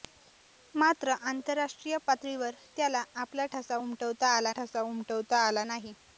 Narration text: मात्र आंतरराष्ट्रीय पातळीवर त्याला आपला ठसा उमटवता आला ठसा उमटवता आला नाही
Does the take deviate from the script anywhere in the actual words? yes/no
no